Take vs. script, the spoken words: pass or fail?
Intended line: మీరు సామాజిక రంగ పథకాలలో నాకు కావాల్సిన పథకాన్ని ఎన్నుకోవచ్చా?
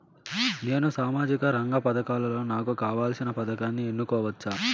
fail